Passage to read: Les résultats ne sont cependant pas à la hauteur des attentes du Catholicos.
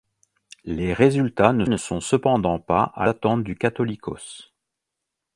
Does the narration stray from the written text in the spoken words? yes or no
yes